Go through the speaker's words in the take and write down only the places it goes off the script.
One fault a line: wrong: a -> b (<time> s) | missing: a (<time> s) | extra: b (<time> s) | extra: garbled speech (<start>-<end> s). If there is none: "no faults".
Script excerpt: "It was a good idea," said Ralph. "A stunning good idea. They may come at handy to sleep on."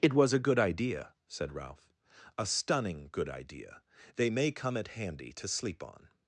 no faults